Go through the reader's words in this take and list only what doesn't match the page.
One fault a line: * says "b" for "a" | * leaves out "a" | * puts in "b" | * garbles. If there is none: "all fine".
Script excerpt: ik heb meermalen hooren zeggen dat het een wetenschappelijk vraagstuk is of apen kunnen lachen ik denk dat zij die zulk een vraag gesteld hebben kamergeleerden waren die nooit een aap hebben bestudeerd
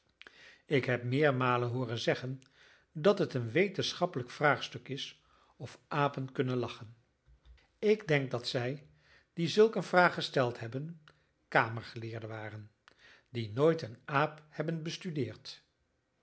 all fine